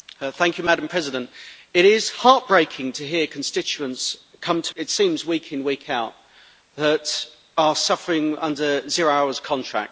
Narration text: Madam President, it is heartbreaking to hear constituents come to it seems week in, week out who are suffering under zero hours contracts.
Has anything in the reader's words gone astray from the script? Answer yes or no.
no